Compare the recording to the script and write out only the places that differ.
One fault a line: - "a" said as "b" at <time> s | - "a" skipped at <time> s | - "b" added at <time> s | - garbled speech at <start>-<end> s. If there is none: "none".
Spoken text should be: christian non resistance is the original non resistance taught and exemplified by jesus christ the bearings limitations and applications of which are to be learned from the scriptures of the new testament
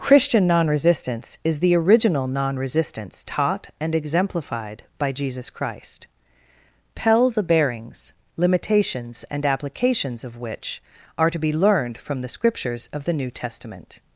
- "pell" added at 7.0 s